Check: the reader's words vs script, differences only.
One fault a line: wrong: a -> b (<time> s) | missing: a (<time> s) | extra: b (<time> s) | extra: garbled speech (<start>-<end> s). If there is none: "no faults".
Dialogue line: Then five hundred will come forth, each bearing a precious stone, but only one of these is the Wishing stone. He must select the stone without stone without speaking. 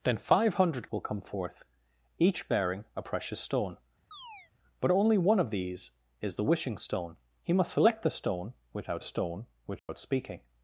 no faults